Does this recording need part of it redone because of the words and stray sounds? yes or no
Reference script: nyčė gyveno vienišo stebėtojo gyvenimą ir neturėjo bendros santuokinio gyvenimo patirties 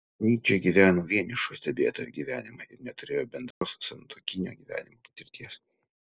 yes